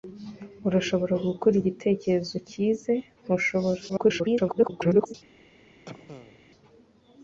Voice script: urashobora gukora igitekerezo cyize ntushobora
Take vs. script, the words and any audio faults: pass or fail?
fail